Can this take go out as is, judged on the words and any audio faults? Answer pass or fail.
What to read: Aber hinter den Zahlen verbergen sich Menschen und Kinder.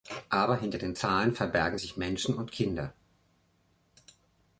pass